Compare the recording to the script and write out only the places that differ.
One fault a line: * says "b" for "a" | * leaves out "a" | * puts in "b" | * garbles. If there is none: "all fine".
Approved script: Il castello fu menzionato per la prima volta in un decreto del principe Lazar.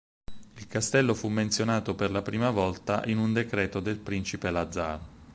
all fine